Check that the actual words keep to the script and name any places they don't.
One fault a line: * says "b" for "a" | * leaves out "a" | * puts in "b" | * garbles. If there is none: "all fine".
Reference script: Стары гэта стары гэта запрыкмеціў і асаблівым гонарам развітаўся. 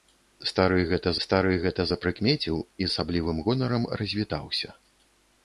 all fine